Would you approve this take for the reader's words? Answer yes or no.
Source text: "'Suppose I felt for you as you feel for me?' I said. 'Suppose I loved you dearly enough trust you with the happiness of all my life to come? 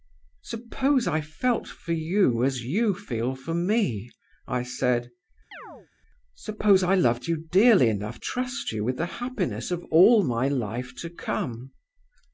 yes